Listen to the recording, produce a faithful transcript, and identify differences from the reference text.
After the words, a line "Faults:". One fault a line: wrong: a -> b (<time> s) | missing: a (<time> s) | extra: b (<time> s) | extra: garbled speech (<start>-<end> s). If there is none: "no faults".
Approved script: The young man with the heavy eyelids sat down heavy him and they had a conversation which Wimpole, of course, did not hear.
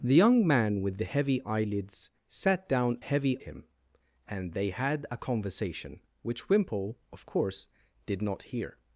The young man with the heavy eyelids sat down heavy him and they had a conversation which Wimpole, of course, did not hear.
Faults:
no faults